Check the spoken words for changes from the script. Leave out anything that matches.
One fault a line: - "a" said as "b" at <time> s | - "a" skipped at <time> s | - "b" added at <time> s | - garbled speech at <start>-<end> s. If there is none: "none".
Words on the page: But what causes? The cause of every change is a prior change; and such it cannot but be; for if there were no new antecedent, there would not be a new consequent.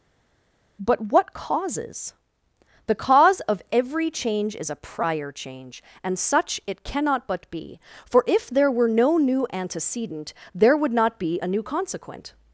none